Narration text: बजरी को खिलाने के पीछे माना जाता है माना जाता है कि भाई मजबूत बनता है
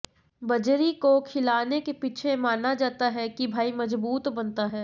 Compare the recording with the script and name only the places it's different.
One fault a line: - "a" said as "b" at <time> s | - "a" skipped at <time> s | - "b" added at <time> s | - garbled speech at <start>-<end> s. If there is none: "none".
- "माना जाता है" skipped at 3.3 s